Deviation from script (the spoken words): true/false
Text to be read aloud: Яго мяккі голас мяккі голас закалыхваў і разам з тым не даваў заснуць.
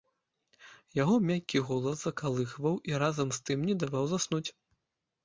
true